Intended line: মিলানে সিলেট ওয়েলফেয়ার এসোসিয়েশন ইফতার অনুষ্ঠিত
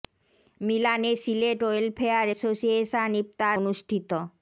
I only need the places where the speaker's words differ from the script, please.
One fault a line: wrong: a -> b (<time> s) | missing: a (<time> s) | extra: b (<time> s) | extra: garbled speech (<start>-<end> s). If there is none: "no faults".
no faults